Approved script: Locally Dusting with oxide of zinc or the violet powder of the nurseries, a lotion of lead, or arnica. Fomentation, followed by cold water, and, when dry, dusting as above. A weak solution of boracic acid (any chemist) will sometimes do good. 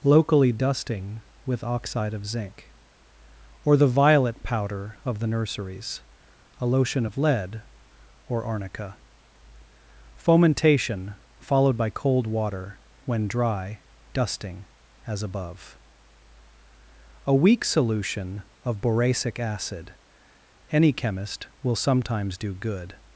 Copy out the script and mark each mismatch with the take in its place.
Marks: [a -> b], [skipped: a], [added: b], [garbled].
Locally Dusting with oxide of zinc or the violet powder of the nurseries, a lotion of lead, or arnica. Fomentation, followed by cold water, [skipped: and,] when dry, dusting as above. A weak solution of boracic acid (any chemist) will sometimes do good.